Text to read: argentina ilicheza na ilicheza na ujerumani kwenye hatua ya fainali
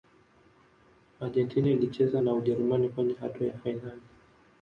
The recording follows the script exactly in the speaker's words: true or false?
false